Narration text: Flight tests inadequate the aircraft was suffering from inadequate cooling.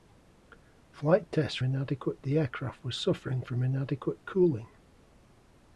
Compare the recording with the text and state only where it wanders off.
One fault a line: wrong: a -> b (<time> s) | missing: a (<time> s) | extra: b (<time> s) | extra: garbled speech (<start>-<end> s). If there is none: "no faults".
no faults